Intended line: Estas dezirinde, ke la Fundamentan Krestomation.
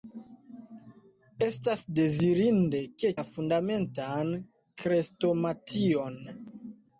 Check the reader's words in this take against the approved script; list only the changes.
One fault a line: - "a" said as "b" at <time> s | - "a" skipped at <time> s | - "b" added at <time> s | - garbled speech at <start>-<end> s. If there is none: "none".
none